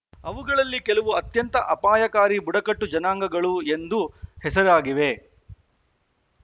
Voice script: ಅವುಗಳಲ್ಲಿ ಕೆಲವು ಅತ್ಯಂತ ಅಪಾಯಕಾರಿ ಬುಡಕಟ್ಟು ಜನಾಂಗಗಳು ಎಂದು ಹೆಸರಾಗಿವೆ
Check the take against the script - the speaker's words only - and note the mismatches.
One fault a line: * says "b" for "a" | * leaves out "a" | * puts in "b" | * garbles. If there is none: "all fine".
all fine